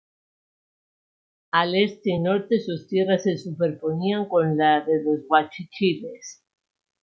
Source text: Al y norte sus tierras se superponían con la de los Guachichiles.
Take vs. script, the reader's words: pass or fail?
fail